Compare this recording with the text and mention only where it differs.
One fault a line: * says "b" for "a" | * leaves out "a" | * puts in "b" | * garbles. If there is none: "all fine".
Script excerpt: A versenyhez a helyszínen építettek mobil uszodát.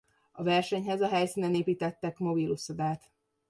all fine